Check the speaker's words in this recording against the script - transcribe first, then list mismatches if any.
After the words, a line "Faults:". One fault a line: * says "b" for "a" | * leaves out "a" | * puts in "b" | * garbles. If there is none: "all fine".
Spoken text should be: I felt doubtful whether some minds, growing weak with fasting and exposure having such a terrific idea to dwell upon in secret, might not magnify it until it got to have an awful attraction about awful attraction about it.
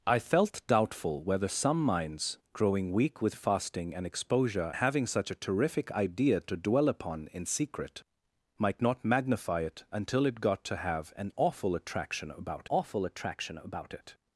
I felt doubtful whether some minds, growing weak with fasting and exposure having such a terrific idea to dwell upon in secret, might not magnify it until it got to have an awful attraction about awful attraction about it.
Faults:
all fine